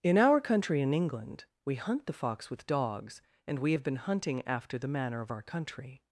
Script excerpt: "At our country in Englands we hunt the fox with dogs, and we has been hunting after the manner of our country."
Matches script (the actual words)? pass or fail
fail